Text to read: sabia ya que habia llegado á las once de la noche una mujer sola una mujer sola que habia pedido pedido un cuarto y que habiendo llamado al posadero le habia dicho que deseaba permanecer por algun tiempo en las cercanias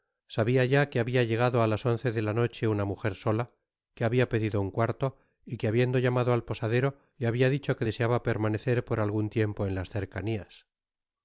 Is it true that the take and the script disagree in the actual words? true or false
true